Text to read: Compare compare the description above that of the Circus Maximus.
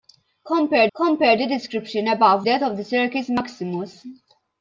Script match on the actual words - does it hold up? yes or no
yes